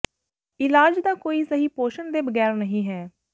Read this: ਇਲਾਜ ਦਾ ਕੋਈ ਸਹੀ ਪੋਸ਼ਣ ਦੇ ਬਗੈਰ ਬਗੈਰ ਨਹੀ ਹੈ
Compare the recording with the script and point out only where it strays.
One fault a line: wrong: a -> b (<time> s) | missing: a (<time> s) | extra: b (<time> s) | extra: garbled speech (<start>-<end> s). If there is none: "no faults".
missing: ਬਗੈਰ (2.5 s)